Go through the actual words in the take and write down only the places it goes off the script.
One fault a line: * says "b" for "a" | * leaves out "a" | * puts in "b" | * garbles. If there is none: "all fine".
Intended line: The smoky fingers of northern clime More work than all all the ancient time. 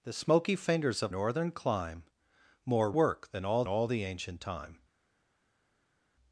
all fine